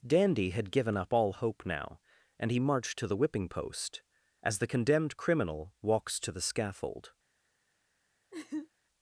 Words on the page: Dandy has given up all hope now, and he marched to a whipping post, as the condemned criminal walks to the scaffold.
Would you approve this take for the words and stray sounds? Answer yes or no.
no